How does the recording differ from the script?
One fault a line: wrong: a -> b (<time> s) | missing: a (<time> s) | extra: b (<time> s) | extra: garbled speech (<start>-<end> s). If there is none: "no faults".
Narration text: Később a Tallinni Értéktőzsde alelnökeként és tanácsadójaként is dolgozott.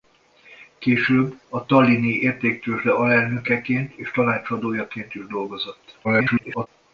extra: garbled speech (6.0-6.7 s)